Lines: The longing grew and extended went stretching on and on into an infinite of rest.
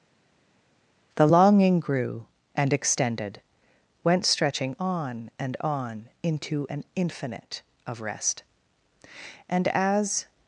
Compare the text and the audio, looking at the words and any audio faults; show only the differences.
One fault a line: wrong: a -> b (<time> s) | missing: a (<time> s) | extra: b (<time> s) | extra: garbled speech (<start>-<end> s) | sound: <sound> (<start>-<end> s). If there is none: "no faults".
extra: And as (9.5 s)